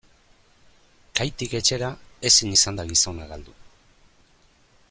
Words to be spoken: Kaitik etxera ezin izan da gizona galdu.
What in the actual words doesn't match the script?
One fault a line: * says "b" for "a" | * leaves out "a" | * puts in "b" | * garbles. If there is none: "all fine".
all fine